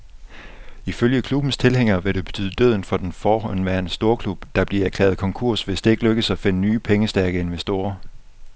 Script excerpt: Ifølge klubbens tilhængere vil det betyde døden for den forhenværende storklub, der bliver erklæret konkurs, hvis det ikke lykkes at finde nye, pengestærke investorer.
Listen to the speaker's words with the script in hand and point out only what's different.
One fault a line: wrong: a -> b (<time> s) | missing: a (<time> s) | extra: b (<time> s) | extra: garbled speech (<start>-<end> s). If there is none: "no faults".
no faults